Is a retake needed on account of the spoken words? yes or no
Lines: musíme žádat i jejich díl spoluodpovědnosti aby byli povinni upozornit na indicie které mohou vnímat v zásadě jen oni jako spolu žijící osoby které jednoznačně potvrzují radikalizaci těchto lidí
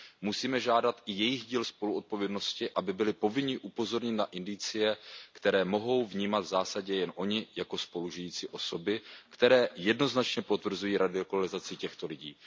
no